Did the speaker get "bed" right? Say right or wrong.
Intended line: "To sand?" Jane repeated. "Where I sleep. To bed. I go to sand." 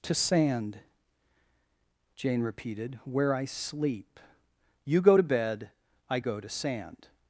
right